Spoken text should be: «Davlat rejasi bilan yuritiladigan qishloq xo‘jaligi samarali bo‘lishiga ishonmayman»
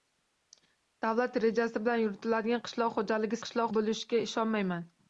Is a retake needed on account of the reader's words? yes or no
yes